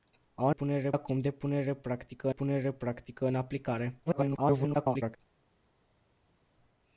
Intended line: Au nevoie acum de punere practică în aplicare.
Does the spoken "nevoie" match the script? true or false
false